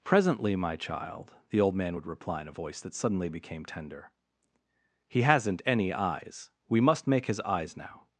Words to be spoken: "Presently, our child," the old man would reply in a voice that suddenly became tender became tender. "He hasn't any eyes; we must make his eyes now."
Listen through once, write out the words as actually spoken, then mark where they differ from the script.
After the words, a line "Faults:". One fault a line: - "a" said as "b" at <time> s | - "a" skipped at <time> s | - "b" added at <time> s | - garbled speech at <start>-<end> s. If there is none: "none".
"Presently, my child," the old man would reply in a voice that suddenly became tender. "He hasn't any eyes; we must make his eyes now."
Faults:
- "our" said as "my" at 0.6 s
- "became tender" skipped at 4.1 s